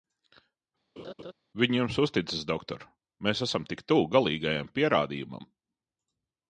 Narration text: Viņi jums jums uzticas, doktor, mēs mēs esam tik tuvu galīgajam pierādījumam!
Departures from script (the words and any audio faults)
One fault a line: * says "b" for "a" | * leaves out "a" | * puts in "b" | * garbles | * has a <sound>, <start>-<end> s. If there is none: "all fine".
* has a laugh, 1.0-1.3 s
* leaves out "jums"
* leaves out "mēs"